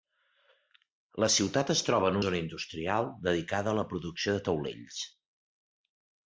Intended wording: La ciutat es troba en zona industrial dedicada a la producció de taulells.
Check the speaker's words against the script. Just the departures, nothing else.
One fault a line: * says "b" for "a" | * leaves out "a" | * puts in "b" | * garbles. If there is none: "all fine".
all fine